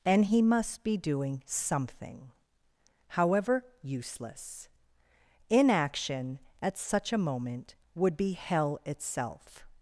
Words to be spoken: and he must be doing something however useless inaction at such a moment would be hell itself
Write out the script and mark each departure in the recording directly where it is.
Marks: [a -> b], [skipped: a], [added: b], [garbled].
and he must be doing something however useless inaction at such a moment would be hell itself